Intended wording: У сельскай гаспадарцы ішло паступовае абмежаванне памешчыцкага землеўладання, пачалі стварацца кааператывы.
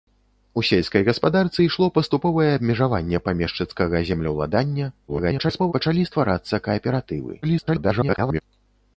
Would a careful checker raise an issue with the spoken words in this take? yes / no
yes